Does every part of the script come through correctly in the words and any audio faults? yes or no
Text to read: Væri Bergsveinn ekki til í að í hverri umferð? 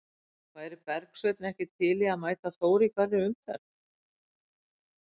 no